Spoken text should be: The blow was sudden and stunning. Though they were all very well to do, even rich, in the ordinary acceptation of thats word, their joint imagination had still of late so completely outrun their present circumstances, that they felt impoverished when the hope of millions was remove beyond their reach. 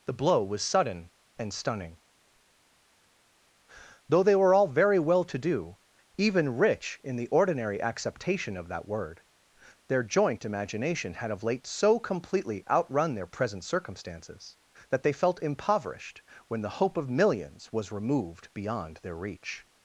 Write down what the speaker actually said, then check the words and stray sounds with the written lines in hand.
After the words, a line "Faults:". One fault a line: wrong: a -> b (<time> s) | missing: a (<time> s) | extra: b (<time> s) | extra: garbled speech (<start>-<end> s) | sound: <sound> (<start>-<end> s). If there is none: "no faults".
The blow was sudden and stunning. Though they were all very well to do, even rich, in the ordinary acceptation of that word, their joint imagination had of late so completely outrun their present circumstances, that they felt impoverished when the hope of millions was removed beyond their reach.
Faults:
wrong: thats -> that (8.7 s)
missing: still (11.3 s)
wrong: remove -> removed (17.9 s)